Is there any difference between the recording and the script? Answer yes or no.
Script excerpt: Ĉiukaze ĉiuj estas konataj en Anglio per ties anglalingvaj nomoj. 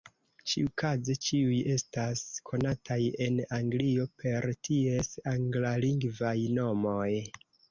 no